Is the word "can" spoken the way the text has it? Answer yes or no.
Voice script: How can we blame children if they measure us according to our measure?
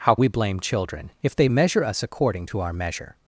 no